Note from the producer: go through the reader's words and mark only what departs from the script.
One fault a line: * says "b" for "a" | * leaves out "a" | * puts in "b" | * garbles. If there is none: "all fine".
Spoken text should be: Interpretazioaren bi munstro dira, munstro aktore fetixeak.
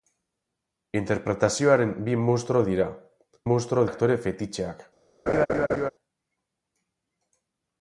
all fine